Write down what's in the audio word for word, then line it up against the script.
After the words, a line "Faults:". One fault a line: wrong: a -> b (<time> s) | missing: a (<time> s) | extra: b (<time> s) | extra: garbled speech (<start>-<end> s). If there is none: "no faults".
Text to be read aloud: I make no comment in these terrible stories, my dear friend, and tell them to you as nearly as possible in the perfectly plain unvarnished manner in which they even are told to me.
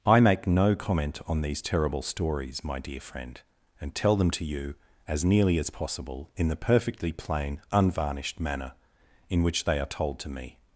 I make no comment on these terrible stories, my dear friend, and tell them to you as nearly as possible in the perfectly plain unvarnished manner in which they are told to me.
Faults:
wrong: in -> on (1.3 s)
missing: even (9.8 s)